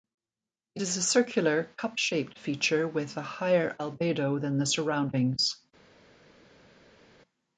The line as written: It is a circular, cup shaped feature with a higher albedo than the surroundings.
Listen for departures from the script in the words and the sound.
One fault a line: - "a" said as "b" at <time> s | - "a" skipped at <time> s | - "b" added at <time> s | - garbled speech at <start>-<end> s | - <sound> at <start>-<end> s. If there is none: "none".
none